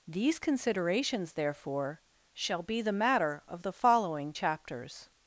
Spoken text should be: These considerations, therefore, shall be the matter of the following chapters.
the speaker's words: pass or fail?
pass